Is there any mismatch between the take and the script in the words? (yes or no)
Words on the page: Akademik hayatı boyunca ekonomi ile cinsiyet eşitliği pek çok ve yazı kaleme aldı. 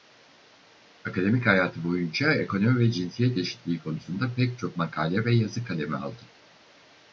yes